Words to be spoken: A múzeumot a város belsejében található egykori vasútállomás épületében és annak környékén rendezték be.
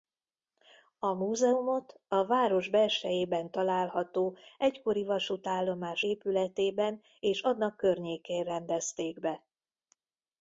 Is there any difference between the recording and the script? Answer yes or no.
no